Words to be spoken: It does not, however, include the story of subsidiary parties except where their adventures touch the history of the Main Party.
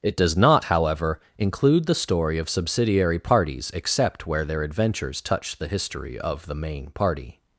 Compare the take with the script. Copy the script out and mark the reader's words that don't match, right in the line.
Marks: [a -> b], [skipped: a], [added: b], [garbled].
It does not, however, include the story of subsidiary parties except where their adventures touch the history of the Main Party.